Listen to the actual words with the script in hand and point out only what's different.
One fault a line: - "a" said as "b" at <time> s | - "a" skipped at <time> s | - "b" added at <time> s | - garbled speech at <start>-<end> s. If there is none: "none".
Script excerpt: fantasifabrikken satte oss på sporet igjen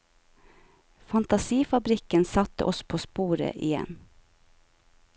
none